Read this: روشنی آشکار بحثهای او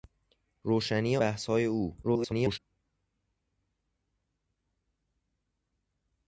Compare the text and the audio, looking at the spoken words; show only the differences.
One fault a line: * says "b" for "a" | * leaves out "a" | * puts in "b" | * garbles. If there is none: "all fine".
* leaves out "آشکار"
* garbles